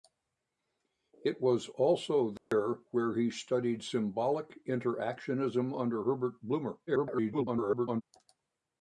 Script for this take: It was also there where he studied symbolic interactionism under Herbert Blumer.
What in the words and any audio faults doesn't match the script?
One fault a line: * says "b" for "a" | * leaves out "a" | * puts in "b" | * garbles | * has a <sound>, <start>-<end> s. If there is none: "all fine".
* has a dropout, 2.4-2.5 s
* garbles